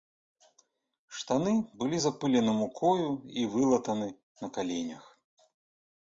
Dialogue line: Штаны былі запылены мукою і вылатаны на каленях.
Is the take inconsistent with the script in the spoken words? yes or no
no